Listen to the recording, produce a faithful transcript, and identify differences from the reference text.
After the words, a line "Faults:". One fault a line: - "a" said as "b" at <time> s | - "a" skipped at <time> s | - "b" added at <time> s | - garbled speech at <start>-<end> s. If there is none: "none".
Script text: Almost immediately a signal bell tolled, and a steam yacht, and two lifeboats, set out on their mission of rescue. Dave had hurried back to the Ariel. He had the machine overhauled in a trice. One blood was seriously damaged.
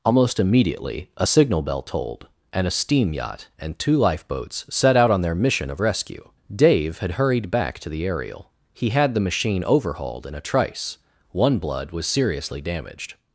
Almost immediately a signal bell tolled, and a steam yacht, and two lifeboats, set out on their mission of rescue. Dave had hurried back to the Ariel. He had the machine overhauled in a trice. One blood was seriously damaged.
Faults:
none